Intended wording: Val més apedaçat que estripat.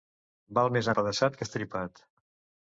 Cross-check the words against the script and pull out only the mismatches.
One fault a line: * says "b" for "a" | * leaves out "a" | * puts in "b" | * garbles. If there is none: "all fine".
all fine